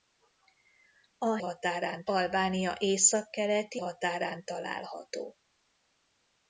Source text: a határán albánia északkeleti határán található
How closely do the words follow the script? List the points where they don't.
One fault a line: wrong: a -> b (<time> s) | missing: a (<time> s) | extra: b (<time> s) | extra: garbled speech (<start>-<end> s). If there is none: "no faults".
no faults